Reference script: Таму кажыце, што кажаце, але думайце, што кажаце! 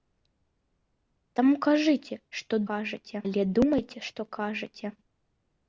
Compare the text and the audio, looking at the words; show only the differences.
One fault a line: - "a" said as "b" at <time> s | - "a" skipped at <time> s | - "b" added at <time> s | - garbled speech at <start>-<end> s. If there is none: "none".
none